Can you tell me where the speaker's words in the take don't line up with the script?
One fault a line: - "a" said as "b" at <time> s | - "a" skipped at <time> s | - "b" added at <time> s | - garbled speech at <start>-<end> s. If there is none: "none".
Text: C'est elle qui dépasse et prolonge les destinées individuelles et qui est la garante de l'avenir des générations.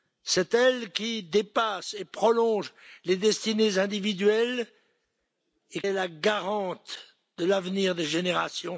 - "qui" skipped at 5.8 s